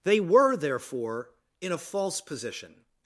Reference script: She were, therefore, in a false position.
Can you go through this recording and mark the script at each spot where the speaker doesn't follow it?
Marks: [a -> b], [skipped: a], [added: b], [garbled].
[She -> They] were, therefore, in a false position.